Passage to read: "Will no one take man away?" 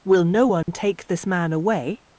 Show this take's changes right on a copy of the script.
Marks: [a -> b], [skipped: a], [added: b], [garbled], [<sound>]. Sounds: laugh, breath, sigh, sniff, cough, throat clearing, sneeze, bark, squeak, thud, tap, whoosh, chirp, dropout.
"Will no one [dropout] take [added: this] man away?"